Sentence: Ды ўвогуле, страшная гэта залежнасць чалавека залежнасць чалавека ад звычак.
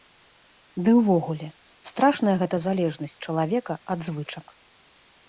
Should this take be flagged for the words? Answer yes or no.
yes